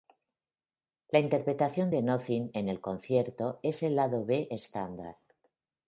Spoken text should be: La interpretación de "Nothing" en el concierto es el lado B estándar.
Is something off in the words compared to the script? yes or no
no